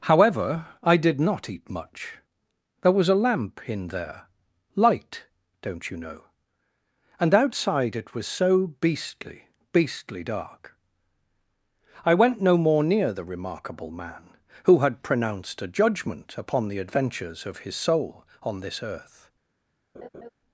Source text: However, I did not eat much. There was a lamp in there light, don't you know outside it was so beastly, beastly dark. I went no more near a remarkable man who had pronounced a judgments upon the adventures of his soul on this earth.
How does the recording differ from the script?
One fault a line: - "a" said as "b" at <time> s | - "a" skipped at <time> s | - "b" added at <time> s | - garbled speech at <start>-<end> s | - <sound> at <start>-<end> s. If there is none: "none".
- "and" added at 7.2 s
- "a" said as "the" at 13.1 s
- "judgments" said as "judgment" at 15.7 s
- laugh at 19.9-20.3 s